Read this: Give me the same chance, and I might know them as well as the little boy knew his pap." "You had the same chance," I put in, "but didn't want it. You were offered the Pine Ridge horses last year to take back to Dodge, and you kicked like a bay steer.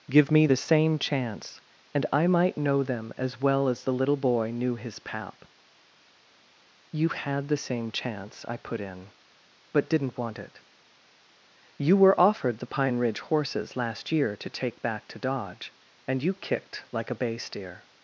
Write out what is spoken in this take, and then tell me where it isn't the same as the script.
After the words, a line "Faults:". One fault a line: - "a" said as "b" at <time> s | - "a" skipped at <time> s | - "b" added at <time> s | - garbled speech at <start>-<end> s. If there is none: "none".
Give me the same chance, and I might know them as well as the little boy knew his pap." "You had the same chance," I put in, "but didn't want it. You were offered the Pine Ridge horses last year to take back to Dodge, and you kicked like a bay steer.
Faults:
none